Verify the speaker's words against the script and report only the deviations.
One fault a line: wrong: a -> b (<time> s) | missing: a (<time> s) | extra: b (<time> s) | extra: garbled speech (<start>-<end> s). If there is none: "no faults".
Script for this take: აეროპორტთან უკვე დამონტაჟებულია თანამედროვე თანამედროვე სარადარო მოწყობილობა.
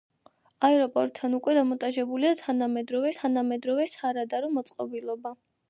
no faults